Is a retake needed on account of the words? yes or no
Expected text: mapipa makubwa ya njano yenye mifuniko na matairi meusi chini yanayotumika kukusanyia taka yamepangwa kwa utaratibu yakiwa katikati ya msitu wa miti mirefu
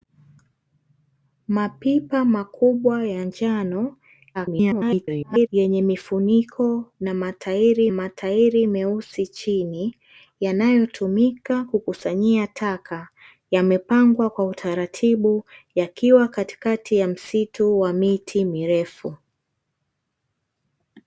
yes